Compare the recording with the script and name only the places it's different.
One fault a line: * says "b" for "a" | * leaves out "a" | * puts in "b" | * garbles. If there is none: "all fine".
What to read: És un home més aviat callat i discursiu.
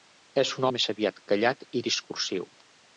* leaves out "home"